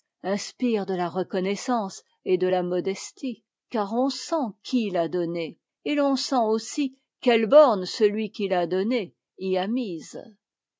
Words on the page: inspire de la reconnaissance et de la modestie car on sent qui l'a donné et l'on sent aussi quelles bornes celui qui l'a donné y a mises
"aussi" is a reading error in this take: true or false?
false